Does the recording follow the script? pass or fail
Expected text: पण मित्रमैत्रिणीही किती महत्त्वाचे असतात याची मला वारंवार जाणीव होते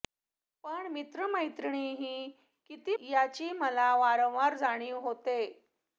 fail